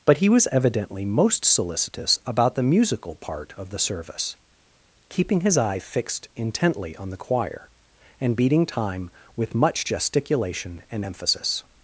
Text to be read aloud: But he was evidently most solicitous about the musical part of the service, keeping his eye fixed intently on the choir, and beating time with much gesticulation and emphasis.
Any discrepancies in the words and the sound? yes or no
no